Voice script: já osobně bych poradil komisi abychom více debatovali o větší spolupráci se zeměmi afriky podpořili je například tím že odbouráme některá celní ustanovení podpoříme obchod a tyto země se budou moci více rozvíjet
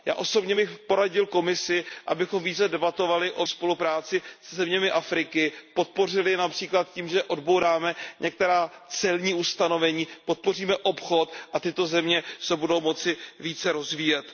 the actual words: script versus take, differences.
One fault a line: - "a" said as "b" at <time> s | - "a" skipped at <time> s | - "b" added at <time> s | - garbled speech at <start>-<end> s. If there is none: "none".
- "větší" skipped at 3.5 s